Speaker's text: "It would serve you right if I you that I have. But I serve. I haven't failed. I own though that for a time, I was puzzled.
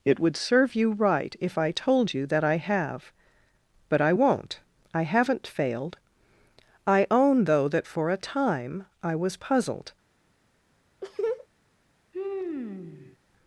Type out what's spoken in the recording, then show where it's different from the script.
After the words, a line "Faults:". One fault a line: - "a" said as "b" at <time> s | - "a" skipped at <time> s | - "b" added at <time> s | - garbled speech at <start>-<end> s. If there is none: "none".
"It would serve you right if I told you that I have. But I won't. I haven't failed. I own though that for a time, I was puzzled.
Faults:
- "told" added at 1.7 s
- "serve" said as "won't" at 4.1 s